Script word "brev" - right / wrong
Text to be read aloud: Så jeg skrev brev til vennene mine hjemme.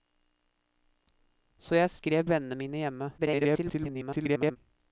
wrong